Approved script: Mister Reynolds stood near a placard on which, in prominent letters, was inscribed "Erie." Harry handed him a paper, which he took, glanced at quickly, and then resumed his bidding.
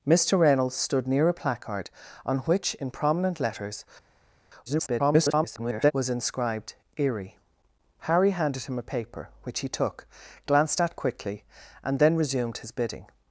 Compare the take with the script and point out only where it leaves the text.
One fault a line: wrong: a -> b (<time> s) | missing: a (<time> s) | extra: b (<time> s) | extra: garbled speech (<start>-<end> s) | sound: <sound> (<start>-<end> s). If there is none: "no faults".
extra: garbled speech (4.7-5.9 s)